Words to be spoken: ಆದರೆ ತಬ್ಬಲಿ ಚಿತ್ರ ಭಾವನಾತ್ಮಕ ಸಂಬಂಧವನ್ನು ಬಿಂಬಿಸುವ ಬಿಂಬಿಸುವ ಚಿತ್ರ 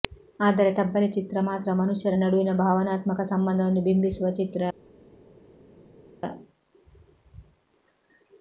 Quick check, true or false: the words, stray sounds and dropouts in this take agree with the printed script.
false